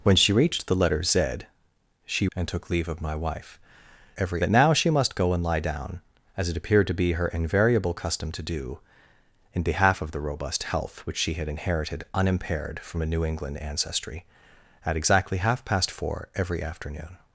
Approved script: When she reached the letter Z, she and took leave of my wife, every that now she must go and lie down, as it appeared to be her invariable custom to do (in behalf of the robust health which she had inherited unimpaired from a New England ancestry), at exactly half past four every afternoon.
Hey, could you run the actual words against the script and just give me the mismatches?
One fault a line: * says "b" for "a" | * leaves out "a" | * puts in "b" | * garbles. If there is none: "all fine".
all fine